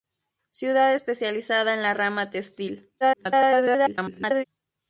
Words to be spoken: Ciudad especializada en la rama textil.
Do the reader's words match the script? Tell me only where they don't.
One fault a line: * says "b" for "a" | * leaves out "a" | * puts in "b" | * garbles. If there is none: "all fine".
* garbles